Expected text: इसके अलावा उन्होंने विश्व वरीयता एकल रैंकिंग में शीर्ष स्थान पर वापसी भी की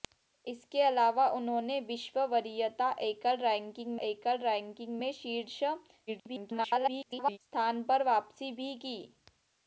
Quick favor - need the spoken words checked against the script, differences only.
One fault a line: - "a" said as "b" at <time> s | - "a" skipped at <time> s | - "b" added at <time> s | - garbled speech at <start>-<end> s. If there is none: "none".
- "एकल रैंकिंग" added at 4.0 s
- garbled speech at 6.1-7.4 s